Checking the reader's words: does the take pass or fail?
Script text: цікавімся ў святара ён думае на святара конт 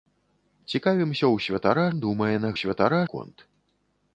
pass